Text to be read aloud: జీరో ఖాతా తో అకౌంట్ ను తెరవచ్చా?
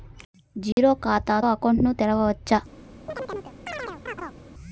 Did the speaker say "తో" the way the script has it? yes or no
no